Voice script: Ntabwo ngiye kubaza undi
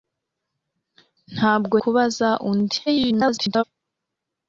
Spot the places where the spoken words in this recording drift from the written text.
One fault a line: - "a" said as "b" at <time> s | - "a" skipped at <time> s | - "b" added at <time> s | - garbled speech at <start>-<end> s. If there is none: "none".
- "ngiye" skipped at 1.8 s
- garbled speech at 2.9-3.6 s